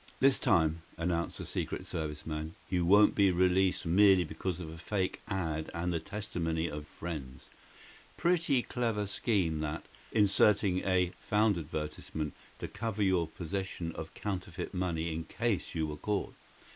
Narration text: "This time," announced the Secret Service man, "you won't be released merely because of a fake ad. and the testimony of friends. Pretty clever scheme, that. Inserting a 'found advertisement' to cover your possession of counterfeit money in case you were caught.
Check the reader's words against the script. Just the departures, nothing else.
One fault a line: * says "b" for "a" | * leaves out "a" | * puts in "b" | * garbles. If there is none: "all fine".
all fine